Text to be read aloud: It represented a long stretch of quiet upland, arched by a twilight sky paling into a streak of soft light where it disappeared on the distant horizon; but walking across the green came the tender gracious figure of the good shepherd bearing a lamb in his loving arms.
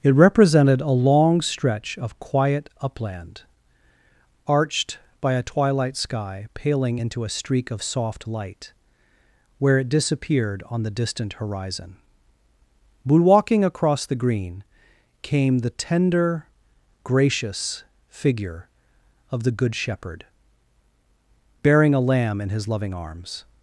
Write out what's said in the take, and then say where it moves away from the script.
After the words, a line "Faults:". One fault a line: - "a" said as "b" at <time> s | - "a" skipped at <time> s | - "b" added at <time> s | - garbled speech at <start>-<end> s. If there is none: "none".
It represented a long stretch of quiet upland, arched by a twilight sky paling into a streak of soft light where it disappeared on the distant horizon; but walking across the green came the tender gracious figure of the good shepherd bearing a lamb in his loving arms.
Faults:
none